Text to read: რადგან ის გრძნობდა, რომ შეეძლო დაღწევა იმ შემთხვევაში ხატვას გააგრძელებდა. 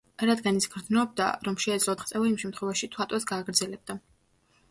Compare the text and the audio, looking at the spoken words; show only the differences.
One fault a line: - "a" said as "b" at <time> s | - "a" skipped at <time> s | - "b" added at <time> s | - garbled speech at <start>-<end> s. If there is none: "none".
none